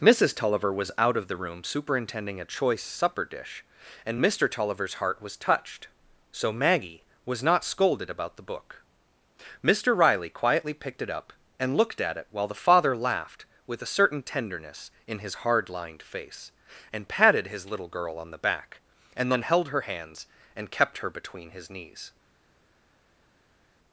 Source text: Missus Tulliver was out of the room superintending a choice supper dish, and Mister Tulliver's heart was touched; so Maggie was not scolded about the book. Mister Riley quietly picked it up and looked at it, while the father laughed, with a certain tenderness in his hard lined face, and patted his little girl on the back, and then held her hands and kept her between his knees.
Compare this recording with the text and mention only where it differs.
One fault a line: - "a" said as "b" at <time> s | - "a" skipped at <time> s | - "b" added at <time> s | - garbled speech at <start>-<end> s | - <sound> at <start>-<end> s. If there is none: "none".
none